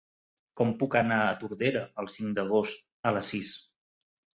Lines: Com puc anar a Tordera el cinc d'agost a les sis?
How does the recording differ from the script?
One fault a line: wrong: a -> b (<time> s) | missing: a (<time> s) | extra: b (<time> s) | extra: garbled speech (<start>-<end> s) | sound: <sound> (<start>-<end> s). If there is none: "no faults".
no faults